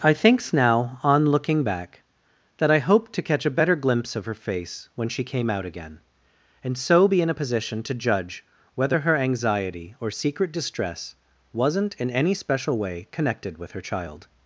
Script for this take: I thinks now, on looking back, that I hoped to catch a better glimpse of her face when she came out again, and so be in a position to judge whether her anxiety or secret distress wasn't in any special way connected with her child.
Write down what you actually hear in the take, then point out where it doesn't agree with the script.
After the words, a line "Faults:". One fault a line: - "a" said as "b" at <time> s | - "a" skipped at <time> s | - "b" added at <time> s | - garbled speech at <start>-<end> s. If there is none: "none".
I thinks now, on looking back, that I hoped to catch a better glimpse of her face when she came out again, and so be in a position to judge whether her anxiety or secret distress wasn't in any special way connected with her child.
Faults:
none